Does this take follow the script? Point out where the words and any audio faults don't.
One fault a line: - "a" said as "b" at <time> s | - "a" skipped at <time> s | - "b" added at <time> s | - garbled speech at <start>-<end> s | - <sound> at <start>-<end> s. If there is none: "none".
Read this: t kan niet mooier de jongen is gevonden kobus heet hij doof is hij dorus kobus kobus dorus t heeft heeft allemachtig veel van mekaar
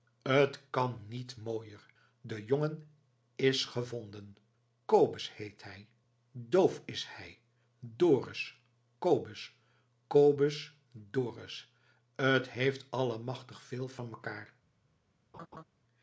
- "heeft" skipped at 12.9 s
- laugh at 15.3-15.6 s